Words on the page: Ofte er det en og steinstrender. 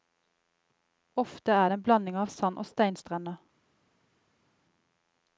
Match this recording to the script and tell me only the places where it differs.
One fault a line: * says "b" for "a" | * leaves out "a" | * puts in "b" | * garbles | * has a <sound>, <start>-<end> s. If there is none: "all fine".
* puts in "blanding av sand"